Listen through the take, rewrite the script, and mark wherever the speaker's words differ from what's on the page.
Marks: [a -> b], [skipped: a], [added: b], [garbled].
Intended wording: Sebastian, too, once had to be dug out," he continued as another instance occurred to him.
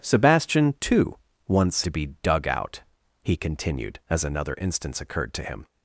Sebastian, too, once [skipped: had] to be dug out," he continued as another instance occurred to him.